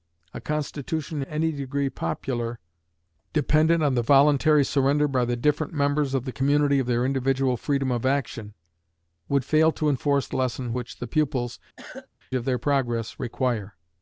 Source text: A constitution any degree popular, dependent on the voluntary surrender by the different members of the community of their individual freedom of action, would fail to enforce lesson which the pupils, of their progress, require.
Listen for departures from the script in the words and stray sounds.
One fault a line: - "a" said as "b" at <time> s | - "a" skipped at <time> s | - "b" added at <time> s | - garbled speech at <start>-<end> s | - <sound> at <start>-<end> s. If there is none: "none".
- cough at 11.8-12.1 s